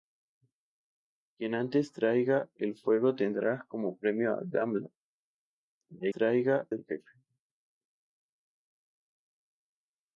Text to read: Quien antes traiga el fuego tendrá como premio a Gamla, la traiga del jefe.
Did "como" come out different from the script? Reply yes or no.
no